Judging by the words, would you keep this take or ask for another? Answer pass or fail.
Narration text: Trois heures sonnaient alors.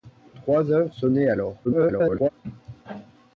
fail